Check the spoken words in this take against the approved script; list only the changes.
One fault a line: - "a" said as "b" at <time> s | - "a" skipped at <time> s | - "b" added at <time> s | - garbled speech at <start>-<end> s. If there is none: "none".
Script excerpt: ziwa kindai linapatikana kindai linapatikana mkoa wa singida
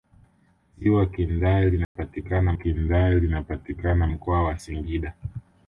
none